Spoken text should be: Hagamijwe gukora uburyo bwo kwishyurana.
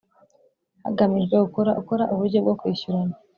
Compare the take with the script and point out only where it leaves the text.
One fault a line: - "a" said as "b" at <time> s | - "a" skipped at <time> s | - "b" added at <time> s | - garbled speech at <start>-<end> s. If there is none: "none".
- "gukora" added at 1.8 s